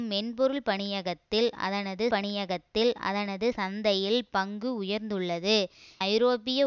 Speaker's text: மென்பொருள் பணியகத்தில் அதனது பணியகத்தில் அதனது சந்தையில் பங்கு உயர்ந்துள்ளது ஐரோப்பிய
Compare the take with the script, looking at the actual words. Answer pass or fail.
pass